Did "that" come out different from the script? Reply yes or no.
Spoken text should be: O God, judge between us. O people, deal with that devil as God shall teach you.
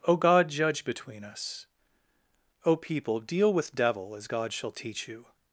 yes